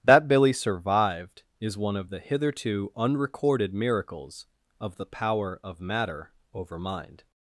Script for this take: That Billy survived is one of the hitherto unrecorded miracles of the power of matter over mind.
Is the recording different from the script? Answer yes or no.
no